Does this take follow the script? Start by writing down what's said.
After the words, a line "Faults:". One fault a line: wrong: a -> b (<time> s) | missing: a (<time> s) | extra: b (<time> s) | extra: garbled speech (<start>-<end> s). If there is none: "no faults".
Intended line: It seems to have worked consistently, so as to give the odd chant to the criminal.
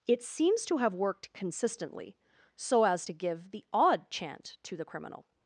It seems to have worked consistently, so as to give the odd chant to the criminal.
Faults:
no faults